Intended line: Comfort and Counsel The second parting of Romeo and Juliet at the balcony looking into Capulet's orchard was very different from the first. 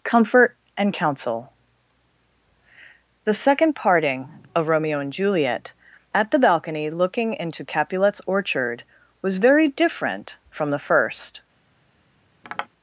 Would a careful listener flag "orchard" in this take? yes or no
no